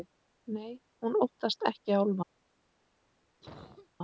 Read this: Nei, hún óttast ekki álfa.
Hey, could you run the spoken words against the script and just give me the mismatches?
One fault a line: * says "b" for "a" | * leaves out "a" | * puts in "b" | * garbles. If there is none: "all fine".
all fine